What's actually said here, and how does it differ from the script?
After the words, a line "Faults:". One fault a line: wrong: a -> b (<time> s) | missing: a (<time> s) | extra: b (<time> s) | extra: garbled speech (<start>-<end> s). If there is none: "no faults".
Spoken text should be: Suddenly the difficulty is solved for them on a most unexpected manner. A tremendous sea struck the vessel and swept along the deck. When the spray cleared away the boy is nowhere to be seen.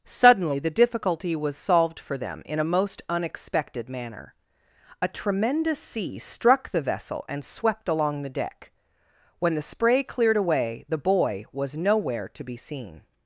Suddenly the difficulty was solved for them in a most unexpected manner. A tremendous sea struck the vessel and swept along the deck. When the spray cleared away the boy was nowhere to be seen.
Faults:
wrong: is -> was (1.4 s)
wrong: on -> in (2.5 s)
wrong: is -> was (11.5 s)